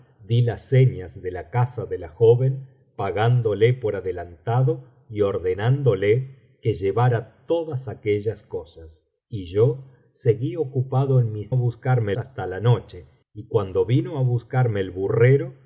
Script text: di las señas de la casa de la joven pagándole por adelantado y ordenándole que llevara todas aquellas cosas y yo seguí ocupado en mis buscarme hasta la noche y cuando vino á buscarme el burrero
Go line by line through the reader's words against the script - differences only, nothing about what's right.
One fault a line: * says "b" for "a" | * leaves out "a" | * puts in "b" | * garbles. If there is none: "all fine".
all fine